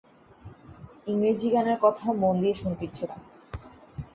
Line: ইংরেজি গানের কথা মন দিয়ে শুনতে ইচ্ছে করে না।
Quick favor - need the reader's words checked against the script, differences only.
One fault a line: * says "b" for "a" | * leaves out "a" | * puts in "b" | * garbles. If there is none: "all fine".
* leaves out "করে"